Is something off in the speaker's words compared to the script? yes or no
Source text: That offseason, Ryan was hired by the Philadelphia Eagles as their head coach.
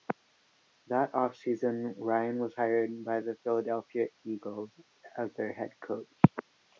no